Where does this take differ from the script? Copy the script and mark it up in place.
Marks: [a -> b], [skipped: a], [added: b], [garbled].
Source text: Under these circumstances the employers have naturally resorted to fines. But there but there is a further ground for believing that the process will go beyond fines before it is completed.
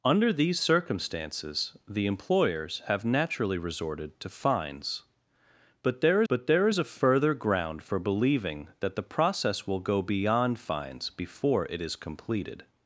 Under these circumstances the employers have naturally resorted to fines. But there but there is a further ground for believing that the process will go beyond fines before it is completed.